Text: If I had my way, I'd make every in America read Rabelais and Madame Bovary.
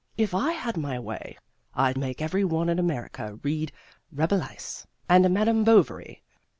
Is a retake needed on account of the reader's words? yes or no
yes